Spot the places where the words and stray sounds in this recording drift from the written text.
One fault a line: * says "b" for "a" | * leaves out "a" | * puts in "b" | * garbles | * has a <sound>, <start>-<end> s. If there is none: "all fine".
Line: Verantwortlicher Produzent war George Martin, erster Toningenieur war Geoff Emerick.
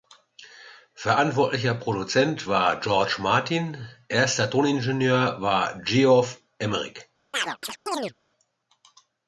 * has a chirp, 7.3-8.1 s